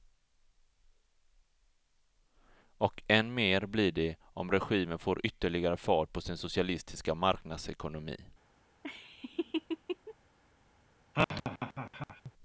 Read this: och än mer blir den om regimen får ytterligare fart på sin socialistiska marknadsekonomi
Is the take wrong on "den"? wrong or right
wrong